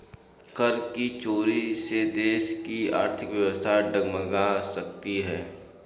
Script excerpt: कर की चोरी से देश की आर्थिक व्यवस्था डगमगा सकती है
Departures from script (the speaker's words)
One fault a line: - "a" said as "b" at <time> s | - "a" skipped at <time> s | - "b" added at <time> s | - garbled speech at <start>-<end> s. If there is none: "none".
none